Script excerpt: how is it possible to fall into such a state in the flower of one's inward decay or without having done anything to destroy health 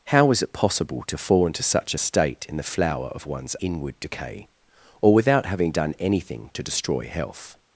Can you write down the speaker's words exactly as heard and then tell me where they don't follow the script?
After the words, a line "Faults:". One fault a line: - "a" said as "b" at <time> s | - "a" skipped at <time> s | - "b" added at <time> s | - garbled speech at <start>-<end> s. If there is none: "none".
how is it possible to fall into such a state in the flower of one's inward decay or without having done anything to destroy health
Faults:
none